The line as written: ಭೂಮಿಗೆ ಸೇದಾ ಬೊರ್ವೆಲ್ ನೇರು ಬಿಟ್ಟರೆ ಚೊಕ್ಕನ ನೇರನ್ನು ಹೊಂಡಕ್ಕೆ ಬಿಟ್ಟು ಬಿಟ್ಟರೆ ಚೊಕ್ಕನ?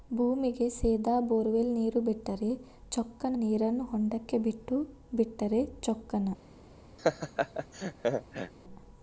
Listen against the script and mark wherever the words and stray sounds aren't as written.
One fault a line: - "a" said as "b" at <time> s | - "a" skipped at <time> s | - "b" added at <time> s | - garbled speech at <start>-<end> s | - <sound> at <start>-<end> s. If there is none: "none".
- laugh at 7.0-8.5 s